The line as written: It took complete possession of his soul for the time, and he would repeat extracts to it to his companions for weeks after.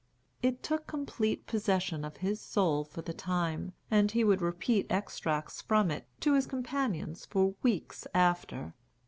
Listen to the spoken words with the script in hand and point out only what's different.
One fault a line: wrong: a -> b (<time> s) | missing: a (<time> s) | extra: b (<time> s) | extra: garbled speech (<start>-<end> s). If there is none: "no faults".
wrong: to -> from (5.6 s)